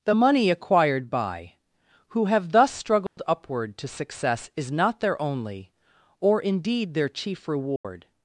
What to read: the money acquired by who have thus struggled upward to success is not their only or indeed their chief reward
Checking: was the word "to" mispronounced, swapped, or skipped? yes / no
no